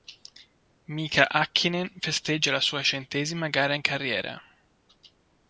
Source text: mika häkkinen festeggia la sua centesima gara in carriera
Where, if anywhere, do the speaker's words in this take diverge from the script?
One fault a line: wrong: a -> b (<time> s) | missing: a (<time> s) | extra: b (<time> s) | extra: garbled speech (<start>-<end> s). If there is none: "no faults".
no faults